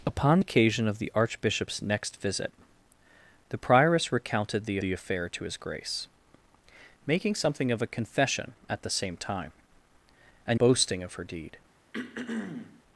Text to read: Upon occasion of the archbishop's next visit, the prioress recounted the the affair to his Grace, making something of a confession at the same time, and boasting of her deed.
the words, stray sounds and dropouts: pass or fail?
fail